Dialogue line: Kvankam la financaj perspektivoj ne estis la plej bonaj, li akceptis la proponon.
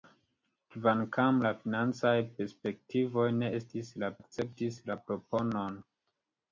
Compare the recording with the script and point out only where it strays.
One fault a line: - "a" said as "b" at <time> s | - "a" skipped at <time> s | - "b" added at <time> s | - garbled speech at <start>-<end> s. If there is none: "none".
- "plej bonaj li" skipped at 4.1 s